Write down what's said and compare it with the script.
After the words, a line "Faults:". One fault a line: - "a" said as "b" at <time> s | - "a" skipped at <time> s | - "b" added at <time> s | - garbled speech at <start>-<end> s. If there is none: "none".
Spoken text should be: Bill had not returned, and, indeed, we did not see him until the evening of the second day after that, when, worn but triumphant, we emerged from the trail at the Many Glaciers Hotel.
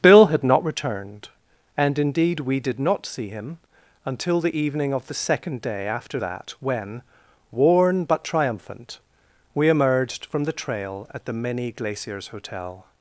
Bill had not returned, and, indeed, we did not see him until the evening of the second day after that, when, worn but triumphant, we emerged from the trail at the Many Glaciers Hotel.
Faults:
none